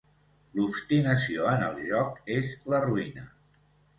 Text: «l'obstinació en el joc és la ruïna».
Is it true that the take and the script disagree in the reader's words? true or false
false